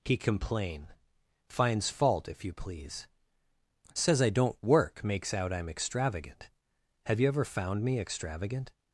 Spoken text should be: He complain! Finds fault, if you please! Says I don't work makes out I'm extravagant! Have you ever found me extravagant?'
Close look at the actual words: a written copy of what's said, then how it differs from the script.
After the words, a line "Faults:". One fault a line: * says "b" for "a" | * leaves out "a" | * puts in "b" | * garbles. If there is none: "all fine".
He complain! Finds fault, if you please! Says I don't work makes out I'm extravagant! Have you ever found me extravagant?'
Faults:
all fine